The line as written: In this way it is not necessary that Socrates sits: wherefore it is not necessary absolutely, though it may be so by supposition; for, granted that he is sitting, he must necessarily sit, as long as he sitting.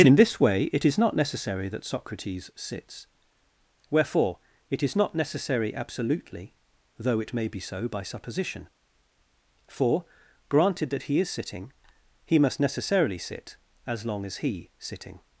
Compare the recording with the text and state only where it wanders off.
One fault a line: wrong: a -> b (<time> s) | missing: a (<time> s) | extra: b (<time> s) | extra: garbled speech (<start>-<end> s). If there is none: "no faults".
no faults